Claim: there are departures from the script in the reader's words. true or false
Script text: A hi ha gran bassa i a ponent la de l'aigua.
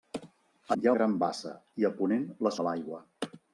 false